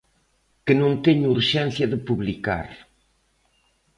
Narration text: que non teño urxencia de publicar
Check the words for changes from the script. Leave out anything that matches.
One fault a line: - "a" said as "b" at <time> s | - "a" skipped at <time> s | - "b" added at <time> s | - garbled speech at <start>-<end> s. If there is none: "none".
none